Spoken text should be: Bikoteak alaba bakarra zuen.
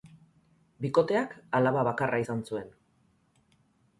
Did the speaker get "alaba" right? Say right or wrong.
right